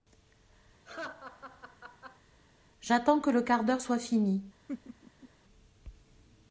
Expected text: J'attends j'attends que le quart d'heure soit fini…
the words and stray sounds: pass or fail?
fail